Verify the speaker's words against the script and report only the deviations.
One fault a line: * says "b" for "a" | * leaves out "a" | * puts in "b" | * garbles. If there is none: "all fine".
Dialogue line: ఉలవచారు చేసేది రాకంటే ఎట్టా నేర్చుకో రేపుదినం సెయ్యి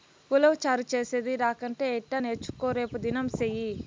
all fine